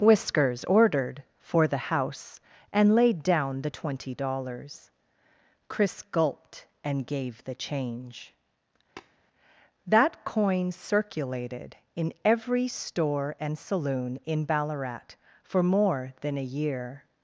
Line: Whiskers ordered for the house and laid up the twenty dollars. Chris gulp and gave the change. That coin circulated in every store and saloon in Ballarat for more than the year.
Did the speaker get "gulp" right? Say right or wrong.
wrong